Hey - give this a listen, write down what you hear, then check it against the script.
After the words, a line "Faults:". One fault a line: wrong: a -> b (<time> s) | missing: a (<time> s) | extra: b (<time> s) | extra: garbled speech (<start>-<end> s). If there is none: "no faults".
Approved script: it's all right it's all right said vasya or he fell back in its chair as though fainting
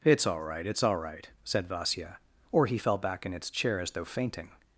it's all right it's all right said vasya or he fell back in its chair as though fainting
Faults:
no faults